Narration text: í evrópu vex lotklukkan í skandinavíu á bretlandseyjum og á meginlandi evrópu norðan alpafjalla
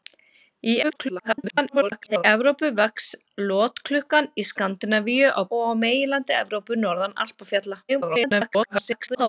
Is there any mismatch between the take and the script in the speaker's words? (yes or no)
yes